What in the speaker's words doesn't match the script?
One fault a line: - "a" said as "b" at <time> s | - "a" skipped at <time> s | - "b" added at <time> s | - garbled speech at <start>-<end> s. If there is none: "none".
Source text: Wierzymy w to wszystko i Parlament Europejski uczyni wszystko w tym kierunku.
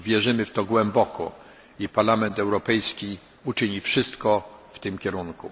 - "wszystko" said as "głęboko" at 0.7 s